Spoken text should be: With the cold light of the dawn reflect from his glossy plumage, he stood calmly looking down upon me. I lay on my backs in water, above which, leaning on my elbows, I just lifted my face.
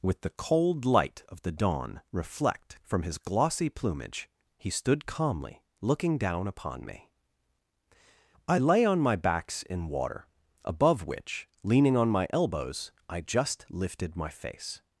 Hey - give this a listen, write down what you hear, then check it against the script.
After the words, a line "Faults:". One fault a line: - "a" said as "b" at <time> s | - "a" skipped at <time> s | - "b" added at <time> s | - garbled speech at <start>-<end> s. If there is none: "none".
With the cold light of the dawn reflect from his glossy plumage, he stood calmly looking down upon me. I lay on my backs in water, above which, leaning on my elbows, I just lifted my face.
Faults:
none